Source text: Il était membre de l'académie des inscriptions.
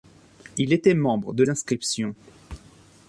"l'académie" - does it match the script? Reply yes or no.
no